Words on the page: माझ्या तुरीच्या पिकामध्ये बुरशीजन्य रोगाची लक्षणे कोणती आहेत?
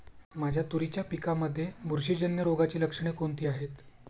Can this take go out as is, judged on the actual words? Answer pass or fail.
pass